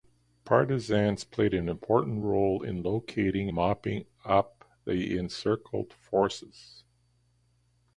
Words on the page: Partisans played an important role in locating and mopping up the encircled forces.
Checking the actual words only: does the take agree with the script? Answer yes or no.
no